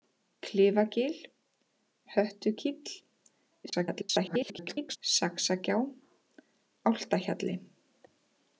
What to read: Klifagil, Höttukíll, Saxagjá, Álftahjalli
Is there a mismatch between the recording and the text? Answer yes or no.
yes